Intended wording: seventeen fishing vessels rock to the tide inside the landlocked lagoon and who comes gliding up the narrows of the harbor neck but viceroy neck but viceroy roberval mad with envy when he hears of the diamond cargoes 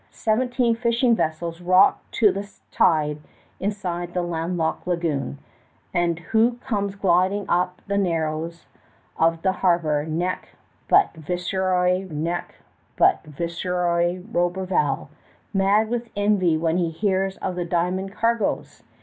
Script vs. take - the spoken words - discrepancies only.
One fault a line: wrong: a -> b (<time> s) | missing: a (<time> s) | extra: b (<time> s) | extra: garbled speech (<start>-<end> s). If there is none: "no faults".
no faults